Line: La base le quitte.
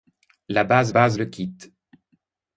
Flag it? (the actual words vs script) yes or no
yes